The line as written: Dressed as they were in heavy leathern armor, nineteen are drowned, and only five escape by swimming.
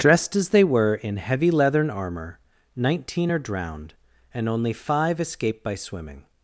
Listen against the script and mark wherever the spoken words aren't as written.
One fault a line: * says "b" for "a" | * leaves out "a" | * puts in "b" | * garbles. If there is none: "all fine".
all fine